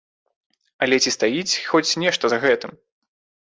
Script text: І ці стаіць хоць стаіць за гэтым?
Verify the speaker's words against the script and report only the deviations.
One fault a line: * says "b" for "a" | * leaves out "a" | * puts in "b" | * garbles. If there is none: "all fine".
* says "Але" for "І"
* says "нешта" for "стаіць"